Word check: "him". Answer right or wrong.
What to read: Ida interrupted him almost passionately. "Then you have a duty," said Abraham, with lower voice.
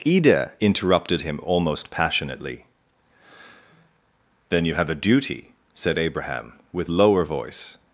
right